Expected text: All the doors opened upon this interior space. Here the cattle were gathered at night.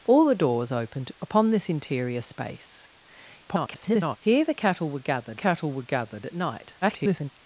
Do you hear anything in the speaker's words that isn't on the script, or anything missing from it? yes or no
yes